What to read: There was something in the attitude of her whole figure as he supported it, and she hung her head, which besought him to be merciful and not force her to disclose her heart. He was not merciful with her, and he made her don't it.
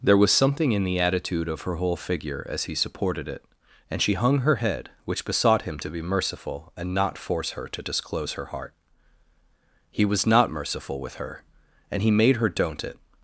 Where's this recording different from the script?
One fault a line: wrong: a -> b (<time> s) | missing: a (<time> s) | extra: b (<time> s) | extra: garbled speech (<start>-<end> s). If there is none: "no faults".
no faults